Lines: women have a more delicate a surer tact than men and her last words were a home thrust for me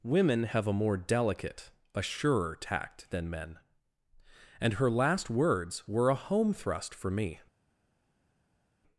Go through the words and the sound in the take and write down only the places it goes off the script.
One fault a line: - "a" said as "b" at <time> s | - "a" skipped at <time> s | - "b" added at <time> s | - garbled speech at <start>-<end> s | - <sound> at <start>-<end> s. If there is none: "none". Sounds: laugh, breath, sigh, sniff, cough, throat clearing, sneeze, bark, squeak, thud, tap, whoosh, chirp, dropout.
none